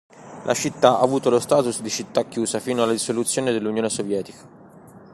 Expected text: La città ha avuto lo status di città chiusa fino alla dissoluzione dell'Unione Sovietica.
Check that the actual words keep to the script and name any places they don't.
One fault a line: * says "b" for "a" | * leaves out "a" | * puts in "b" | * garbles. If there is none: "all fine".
all fine